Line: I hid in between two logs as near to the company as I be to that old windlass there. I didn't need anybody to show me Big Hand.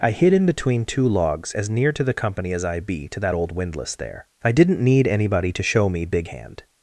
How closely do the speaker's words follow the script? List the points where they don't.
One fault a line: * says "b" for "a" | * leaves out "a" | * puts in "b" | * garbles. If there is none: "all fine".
all fine